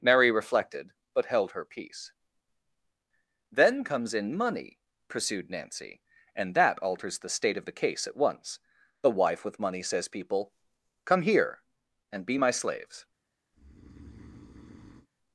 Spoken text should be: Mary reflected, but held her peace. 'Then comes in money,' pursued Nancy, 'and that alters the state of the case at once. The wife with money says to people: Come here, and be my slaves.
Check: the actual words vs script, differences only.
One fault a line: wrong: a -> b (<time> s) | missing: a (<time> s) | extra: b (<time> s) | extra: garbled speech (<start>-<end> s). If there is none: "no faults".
missing: to (10.1 s)